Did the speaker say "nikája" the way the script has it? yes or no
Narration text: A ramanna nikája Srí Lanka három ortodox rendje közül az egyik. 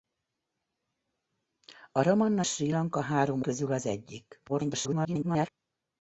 no